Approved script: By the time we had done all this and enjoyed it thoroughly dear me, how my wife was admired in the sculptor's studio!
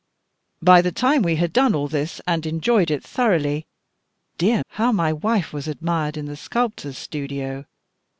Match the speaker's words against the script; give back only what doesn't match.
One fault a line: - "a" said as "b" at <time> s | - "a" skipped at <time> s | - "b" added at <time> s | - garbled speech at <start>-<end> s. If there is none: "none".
- "me" skipped at 4.6 s